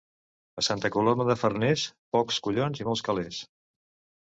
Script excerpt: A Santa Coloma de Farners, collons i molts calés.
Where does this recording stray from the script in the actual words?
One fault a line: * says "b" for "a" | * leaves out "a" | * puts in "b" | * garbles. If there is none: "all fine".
* puts in "pocs"